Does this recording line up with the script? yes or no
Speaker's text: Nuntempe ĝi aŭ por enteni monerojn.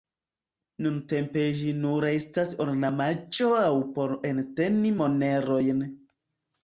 no